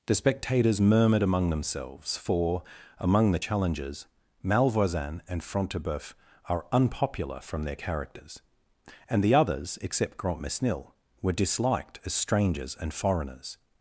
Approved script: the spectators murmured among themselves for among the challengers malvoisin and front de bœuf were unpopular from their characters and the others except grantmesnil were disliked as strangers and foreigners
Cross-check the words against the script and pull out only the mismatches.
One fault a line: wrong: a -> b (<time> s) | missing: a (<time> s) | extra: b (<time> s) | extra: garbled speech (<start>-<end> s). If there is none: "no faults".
wrong: were -> are (6.5 s)